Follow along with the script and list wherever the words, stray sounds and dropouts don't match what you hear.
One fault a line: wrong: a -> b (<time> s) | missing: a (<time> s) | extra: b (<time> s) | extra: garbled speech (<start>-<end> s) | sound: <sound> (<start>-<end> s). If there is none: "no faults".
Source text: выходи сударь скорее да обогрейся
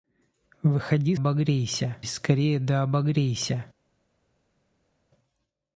wrong: сударь -> обогрейся (1.1 s)